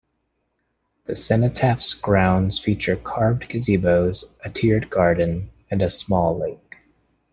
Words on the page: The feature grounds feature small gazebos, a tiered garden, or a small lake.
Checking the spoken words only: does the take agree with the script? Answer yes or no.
no